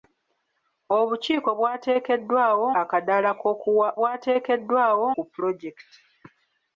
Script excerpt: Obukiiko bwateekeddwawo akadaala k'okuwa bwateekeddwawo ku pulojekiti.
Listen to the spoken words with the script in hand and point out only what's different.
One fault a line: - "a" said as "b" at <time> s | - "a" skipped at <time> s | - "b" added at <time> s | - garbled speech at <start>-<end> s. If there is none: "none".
none